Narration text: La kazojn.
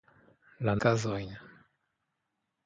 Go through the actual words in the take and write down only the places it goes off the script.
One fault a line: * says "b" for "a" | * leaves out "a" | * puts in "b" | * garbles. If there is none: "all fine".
all fine